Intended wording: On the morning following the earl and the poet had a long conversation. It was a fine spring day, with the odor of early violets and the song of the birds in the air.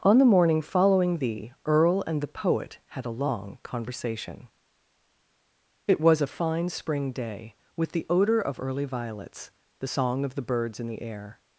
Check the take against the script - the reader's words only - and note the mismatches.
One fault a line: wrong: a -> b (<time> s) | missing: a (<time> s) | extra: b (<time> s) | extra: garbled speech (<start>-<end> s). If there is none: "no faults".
missing: and (9.5 s)